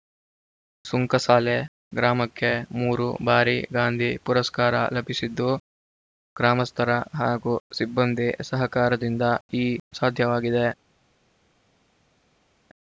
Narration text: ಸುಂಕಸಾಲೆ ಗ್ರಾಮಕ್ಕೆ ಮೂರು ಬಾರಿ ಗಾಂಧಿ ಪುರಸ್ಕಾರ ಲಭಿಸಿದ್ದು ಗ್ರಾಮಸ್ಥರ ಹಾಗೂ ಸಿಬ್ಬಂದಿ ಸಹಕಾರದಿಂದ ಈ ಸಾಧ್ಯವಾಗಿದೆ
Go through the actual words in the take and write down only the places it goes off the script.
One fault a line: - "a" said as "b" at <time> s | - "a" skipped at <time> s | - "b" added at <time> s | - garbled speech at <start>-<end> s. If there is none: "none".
none